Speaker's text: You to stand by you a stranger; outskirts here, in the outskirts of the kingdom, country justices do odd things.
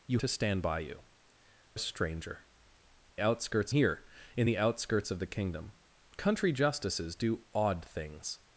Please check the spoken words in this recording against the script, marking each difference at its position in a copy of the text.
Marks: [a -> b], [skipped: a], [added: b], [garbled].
You to stand by you a stranger; outskirts here, in the outskirts of the kingdom, country justices do odd things.